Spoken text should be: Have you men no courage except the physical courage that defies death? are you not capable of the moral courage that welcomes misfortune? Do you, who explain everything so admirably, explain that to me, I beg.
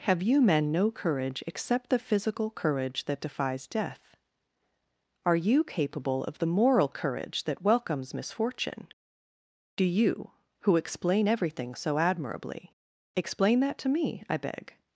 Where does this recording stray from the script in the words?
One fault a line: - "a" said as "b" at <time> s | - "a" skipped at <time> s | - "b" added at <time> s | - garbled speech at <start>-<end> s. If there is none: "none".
- "not" skipped at 5.6 s